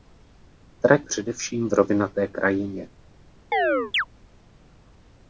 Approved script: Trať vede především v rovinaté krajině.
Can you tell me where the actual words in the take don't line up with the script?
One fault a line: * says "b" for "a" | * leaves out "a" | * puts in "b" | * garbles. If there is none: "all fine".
* leaves out "vede"